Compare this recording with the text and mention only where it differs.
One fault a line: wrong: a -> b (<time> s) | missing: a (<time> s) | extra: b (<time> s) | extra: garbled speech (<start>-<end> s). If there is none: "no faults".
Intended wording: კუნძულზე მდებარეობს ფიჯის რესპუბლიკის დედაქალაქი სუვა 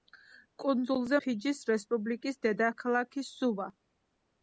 missing: მდებარეობს (1.2 s)